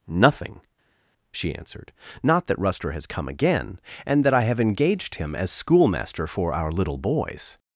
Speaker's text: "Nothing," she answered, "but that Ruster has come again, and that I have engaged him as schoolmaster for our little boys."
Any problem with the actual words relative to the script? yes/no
yes